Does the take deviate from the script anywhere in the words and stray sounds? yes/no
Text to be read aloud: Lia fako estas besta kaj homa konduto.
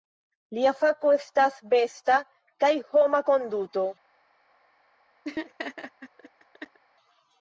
yes